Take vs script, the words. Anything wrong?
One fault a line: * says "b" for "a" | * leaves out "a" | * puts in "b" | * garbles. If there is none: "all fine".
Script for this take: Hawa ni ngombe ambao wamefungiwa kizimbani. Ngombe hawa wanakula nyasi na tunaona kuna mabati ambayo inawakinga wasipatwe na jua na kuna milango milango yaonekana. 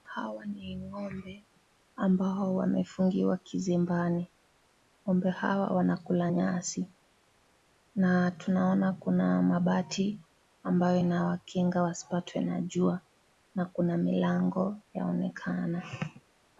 * leaves out "milango"